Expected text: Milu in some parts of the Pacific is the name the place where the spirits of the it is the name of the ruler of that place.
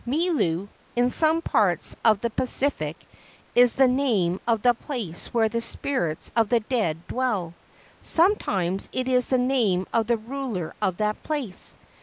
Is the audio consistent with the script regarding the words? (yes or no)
no